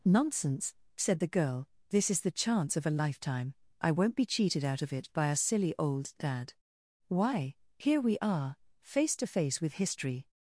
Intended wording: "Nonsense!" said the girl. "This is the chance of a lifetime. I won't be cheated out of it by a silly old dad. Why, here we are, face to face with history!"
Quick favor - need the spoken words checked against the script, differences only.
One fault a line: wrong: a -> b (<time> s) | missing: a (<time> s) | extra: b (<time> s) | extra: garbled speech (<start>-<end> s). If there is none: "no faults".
no faults